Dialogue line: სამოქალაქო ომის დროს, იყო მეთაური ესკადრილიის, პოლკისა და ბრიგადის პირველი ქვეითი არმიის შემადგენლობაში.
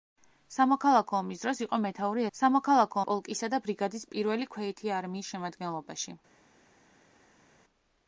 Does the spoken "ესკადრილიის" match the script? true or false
false